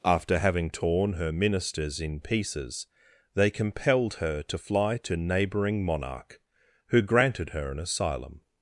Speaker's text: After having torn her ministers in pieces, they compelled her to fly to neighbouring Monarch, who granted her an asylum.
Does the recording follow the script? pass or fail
pass